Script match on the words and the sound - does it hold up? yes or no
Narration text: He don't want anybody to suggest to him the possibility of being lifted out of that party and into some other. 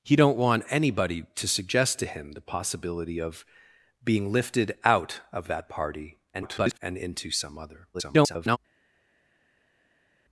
no